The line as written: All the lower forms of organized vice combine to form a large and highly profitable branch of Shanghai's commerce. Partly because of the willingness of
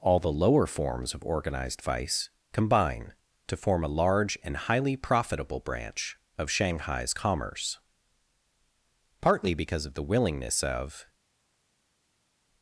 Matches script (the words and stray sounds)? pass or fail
pass